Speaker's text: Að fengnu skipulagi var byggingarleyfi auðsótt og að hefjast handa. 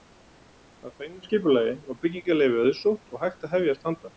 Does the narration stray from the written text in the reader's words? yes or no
yes